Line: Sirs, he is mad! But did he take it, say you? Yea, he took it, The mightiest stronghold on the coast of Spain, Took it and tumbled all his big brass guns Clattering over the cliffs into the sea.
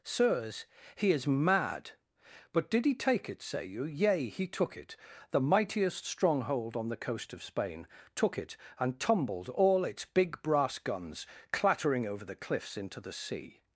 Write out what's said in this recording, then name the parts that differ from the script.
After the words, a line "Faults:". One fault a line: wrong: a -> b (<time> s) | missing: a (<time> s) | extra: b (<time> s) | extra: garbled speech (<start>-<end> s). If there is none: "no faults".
Sirs, he is mad! But did he take it, say you? Yea, he took it, The mightiest stronghold on the coast of Spain, Took it and tumbled all its big brass guns Clattering over the cliffs into the sea.
Faults:
wrong: his -> its (9.8 s)